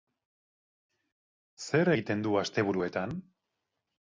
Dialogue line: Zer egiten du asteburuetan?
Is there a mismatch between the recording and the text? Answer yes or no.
no